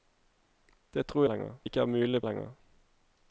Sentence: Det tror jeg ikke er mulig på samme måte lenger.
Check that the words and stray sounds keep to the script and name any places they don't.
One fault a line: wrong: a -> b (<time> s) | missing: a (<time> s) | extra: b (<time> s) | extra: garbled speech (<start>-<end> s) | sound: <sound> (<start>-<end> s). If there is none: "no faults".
wrong: jeg -> lenger (1.3 s)
missing: på samme måte (2.2 s)